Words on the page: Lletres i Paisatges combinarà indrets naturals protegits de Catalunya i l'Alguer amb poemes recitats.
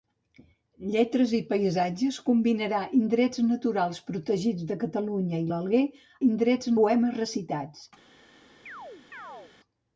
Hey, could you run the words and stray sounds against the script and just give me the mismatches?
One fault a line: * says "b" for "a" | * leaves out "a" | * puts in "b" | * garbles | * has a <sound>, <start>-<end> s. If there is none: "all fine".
* says "indrets" for "amb"
* has a chirp, 8.7-9.5 s